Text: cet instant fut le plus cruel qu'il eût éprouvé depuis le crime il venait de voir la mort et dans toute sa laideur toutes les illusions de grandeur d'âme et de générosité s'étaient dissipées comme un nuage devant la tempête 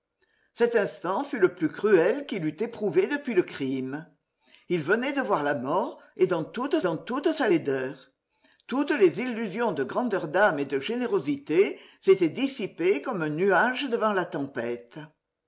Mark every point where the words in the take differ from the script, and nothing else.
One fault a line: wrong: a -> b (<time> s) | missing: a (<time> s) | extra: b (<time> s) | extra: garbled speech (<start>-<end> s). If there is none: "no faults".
extra: dans toute (6.8 s)